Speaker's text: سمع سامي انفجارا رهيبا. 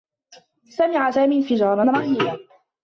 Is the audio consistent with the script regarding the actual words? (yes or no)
yes